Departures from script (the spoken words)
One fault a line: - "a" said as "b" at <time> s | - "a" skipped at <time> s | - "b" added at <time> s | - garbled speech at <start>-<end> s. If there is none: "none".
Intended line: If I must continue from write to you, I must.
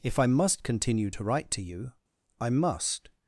- "from" said as "to" at 1.1 s